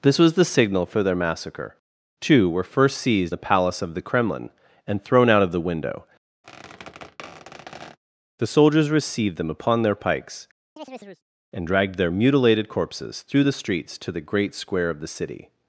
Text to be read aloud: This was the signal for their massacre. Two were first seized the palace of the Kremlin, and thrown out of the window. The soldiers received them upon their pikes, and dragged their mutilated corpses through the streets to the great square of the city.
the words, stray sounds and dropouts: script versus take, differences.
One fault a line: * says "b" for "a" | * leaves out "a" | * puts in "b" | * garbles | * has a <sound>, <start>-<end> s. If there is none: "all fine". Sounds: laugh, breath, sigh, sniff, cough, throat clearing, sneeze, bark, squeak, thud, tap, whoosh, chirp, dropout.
* has a squeak, 6.4-8.0 s
* has a chirp, 10.8-11.2 s